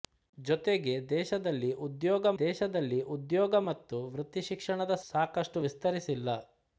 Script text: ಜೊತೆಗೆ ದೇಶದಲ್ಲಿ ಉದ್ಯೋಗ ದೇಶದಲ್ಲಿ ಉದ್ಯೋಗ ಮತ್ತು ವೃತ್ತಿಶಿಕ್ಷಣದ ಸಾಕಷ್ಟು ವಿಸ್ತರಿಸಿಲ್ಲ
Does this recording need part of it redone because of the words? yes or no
no